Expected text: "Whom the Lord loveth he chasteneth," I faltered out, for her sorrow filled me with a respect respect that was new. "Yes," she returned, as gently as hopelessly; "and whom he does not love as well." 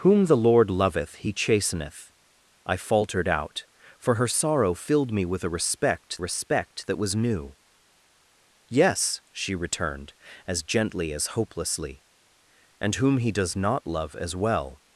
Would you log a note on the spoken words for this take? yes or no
no